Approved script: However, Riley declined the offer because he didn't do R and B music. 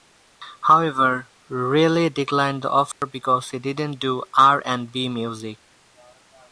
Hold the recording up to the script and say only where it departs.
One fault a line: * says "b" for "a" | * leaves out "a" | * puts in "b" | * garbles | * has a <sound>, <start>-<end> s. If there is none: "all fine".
* has a dropout, 2.9-3.0 s